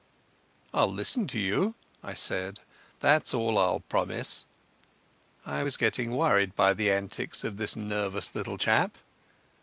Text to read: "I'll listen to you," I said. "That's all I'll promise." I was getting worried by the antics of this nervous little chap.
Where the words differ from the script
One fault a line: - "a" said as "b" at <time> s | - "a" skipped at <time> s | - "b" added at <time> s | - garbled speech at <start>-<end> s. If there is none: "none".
none